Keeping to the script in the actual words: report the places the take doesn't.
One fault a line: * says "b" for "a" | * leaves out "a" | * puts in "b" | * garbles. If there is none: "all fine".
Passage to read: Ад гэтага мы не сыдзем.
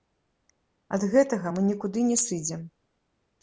* puts in "нікуды"